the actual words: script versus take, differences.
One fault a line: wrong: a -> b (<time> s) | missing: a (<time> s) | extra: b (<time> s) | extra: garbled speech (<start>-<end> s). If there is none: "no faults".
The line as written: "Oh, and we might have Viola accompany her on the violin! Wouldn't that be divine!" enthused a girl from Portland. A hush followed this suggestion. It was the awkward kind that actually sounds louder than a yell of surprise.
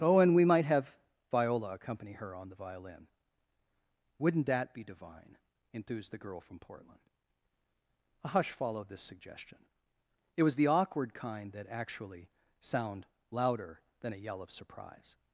wrong: a -> the (6.1 s)
wrong: sounds -> sound (12.6 s)